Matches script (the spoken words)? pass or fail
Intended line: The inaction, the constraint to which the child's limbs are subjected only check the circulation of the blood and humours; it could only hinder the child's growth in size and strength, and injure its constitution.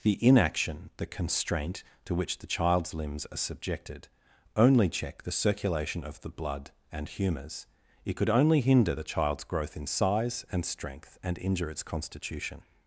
pass